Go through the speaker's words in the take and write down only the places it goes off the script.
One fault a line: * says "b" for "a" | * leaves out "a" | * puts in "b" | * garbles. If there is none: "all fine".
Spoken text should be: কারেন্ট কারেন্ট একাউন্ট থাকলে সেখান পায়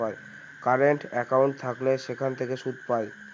* leaves out "কারেন্ট"
* puts in "থেকে সুদ"